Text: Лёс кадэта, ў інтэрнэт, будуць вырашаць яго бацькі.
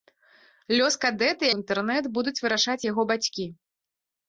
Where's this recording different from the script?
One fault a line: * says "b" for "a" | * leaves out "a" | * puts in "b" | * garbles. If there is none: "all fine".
all fine